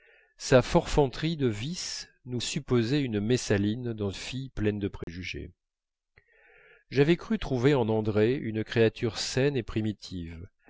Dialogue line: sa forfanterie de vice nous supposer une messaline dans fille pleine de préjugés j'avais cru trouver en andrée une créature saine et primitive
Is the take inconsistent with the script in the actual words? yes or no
no